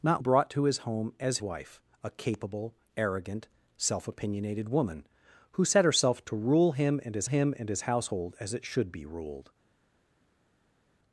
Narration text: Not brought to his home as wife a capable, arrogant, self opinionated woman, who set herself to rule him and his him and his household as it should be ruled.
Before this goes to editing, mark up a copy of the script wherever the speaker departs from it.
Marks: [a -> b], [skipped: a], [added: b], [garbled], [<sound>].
Not brought to his home as wife a capable, arrogant, self opinionated woman, who set herself to rule him and his him and his household as it should be ruled.